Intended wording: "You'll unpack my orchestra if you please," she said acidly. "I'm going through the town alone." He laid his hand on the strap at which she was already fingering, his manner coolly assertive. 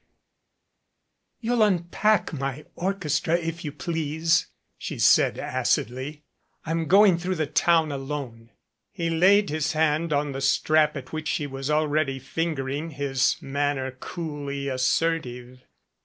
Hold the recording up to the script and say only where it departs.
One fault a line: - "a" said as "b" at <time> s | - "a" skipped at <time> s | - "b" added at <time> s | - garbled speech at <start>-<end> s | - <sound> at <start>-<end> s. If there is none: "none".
none